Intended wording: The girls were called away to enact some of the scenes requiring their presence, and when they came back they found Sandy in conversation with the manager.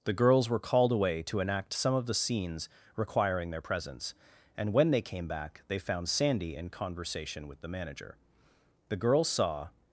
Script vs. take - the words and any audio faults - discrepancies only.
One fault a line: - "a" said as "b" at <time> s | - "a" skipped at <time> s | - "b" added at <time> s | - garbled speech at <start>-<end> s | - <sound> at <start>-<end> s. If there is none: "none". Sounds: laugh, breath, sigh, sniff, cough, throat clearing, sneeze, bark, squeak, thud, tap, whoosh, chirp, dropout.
- "The girls saw" added at 8.9 s